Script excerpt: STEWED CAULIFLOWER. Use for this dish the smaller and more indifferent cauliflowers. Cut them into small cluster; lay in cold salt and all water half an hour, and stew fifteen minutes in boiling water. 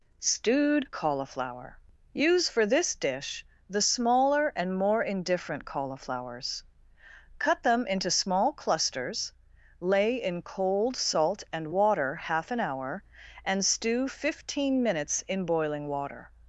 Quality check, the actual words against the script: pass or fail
fail